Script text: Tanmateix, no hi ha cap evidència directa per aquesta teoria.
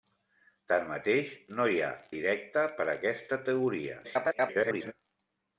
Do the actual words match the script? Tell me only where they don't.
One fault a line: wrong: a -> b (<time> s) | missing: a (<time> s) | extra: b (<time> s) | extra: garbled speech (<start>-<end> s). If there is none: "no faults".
missing: cap evidència (1.9 s)
extra: garbled speech (4.0-4.9 s)